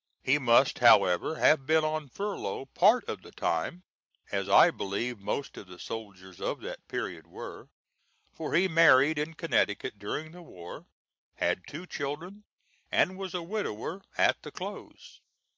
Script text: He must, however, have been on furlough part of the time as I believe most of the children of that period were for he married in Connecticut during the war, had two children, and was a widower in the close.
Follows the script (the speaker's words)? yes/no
no